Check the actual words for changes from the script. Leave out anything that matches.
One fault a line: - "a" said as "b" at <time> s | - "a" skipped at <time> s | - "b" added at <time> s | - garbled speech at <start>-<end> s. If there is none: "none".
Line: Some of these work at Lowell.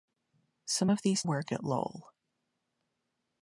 none